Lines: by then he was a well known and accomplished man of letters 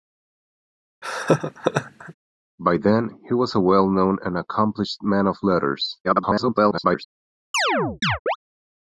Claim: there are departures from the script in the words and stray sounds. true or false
true